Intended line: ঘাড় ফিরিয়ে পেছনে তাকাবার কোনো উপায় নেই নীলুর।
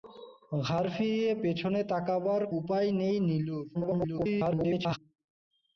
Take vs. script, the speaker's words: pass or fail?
fail